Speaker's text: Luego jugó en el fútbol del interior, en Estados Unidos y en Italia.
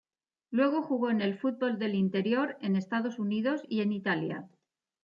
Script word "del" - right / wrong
right